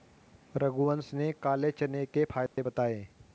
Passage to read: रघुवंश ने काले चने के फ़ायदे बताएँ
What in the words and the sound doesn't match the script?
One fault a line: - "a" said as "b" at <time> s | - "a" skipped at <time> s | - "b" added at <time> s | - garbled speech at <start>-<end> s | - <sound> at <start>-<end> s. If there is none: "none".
- dropout at 2.5-2.6 s